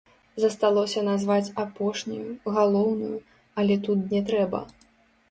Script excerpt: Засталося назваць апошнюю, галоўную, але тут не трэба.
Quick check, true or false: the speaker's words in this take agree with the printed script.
true